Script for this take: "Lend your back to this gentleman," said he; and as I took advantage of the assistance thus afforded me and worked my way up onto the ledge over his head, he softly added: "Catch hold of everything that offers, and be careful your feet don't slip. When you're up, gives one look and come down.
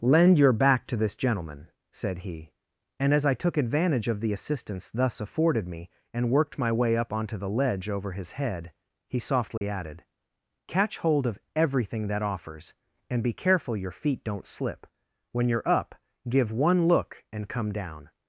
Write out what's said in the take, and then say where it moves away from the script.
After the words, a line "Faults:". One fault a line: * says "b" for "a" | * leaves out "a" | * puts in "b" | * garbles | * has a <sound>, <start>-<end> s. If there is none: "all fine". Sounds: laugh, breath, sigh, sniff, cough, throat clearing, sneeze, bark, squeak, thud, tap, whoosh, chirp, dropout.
"Lend your back to this gentleman," said he; and as I took advantage of the assistance thus afforded me and worked my way up onto the ledge over his head, he softly added: "Catch hold of everything that offers, and be careful your feet don't slip. When you're up, give one look and come down.
Faults:
* has a dropout, 9.6-9.6 s
* says "give" for "gives"